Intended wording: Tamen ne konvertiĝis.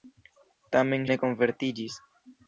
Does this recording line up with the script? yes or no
yes